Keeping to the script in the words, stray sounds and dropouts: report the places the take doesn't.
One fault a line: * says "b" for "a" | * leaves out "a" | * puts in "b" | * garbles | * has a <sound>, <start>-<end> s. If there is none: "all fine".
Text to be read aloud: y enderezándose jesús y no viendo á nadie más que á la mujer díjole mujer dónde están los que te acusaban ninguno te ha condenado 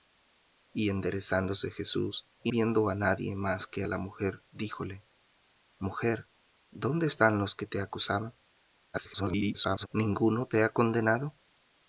* leaves out "no"
* garbles